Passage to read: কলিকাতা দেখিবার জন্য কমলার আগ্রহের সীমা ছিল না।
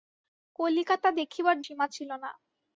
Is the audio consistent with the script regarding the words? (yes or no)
no